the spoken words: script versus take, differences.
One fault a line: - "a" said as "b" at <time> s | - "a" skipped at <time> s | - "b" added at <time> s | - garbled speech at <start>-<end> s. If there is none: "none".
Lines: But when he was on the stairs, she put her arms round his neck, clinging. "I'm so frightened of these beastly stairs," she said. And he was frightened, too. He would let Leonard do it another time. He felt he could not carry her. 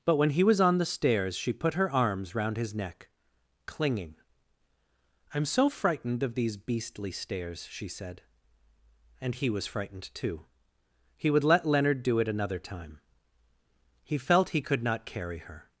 none